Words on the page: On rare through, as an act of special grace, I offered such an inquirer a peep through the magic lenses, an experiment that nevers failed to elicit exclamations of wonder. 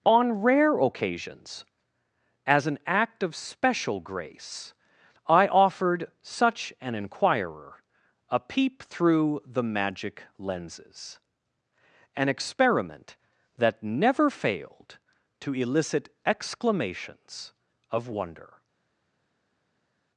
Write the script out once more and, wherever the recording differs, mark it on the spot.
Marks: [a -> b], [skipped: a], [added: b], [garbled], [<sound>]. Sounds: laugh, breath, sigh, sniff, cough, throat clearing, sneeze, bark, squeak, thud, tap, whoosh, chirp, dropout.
On rare [through, -> occasions] as an act of special grace, I offered such an inquirer a peep through the magic lenses, an experiment that [nevers -> never] failed to elicit exclamations of wonder.